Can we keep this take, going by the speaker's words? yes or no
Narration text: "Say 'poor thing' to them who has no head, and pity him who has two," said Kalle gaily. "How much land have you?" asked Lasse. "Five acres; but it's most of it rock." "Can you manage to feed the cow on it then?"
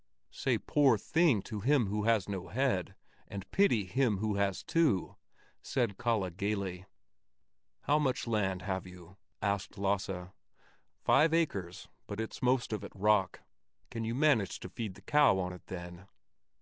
no